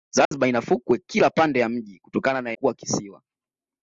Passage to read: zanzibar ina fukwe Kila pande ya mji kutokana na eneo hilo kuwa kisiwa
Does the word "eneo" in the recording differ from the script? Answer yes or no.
yes